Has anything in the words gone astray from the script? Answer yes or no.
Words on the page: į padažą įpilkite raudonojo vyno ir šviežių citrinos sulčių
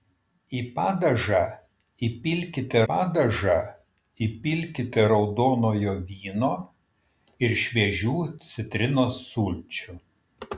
yes